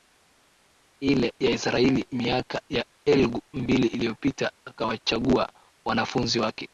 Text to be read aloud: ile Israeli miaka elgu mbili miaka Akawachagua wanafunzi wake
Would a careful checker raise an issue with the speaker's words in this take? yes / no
yes